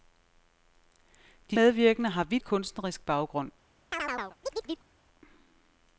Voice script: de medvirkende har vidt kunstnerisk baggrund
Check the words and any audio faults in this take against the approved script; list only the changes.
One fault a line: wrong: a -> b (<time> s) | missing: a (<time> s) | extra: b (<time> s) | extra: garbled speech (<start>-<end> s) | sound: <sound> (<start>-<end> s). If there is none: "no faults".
sound: chirp (3.9-4.9 s)